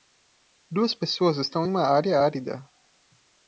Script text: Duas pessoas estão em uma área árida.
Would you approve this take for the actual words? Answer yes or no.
yes